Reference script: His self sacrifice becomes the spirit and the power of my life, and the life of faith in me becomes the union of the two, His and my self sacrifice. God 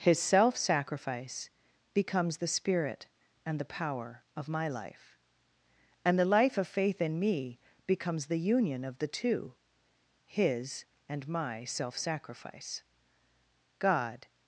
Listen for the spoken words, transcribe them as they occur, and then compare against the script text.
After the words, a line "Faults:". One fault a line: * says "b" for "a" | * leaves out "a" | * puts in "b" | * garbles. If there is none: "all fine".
His self sacrifice becomes the spirit and the power of my life, and the life of faith in me becomes the union of the two, His and my self sacrifice. God
Faults:
all fine